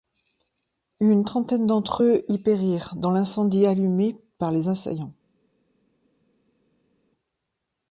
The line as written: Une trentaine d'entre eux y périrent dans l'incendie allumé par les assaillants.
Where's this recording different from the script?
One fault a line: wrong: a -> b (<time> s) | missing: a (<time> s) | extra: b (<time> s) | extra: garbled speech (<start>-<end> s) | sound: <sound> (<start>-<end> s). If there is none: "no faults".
no faults